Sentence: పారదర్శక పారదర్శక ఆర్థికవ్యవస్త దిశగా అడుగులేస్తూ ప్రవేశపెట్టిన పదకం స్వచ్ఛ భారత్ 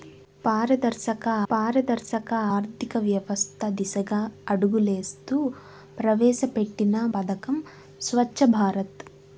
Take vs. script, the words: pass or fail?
pass